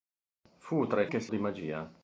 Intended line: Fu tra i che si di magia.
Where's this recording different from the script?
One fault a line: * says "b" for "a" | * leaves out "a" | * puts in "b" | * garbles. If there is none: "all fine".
all fine